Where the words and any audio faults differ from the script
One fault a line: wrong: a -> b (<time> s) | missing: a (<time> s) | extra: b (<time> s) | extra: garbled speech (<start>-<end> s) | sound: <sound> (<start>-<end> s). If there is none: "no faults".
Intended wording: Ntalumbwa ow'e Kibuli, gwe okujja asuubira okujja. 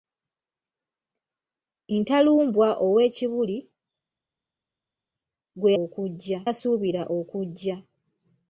no faults